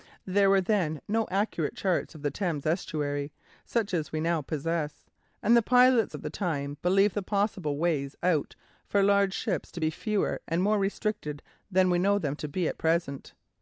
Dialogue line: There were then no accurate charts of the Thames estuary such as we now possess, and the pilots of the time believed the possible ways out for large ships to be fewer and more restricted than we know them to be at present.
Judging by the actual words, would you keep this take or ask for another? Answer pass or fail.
pass